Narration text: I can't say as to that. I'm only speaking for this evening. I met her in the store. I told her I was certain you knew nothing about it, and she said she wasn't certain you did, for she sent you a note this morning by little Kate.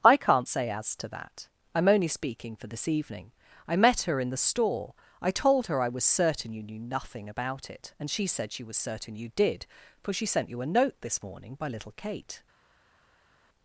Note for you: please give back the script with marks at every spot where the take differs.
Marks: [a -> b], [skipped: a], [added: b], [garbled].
I can't say as to that. I'm only speaking for this evening. I met her in the store. I told her I was certain you knew nothing about it, and she said she [wasn't -> was] certain you did, for she sent you a note this morning by little Kate.